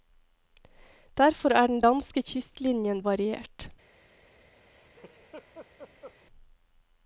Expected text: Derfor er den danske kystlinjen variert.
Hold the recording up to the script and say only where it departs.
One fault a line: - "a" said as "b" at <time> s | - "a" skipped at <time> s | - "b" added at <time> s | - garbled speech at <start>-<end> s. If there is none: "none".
none